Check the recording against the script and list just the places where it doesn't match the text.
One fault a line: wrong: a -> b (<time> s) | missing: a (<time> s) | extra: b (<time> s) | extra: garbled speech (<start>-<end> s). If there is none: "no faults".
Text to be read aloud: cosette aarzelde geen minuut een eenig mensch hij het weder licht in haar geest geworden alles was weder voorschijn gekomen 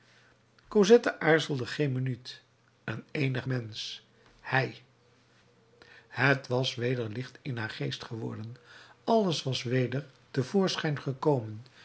extra: was (6.5 s)
extra: te (10.3 s)